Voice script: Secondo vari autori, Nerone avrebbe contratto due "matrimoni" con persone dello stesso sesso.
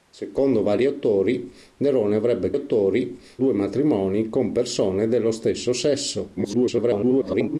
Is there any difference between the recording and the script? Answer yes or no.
yes